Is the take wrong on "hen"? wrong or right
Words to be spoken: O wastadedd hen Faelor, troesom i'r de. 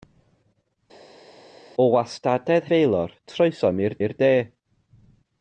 wrong